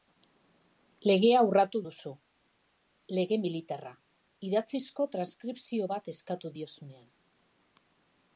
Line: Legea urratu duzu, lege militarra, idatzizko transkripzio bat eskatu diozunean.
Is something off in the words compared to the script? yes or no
no